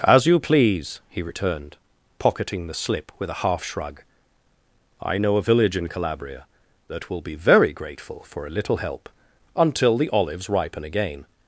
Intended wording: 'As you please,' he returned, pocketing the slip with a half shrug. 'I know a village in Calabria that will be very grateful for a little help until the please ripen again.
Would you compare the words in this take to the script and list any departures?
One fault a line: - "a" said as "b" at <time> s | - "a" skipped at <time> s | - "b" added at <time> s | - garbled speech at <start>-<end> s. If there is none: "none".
- "please" said as "olives" at 10.1 s